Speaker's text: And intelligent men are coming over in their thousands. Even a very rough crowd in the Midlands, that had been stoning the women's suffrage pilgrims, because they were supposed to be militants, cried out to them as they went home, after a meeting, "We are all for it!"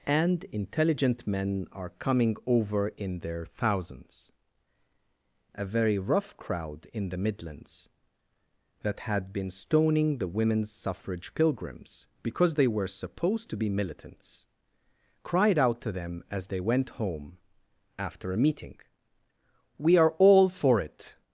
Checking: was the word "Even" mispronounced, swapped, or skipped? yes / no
yes